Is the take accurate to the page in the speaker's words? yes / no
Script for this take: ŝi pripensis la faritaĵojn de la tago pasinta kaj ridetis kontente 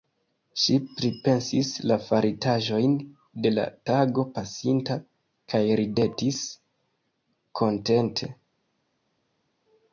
yes